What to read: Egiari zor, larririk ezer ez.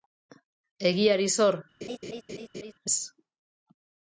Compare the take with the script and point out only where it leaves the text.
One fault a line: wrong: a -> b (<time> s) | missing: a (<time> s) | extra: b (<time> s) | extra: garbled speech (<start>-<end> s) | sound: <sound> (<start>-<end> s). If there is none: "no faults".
missing: larririk ezer (1.6 s)
sound: laugh (1.8-2.7 s)